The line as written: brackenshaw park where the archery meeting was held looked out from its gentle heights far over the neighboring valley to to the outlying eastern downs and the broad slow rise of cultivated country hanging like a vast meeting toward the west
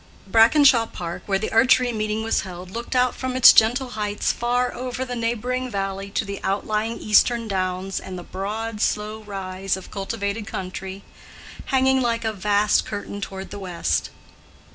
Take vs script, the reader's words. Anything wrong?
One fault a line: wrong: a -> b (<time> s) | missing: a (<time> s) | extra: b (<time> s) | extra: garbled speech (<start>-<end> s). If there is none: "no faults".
missing: to (6.2 s)
wrong: meeting -> curtain (12.9 s)